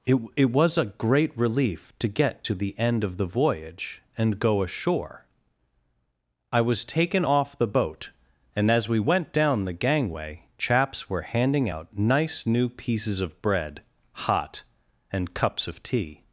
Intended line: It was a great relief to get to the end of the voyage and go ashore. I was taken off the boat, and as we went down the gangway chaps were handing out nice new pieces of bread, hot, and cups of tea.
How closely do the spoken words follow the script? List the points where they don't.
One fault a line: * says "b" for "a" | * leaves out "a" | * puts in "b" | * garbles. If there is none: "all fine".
* puts in "it"